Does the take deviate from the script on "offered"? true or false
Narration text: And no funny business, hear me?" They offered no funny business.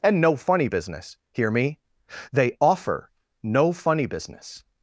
true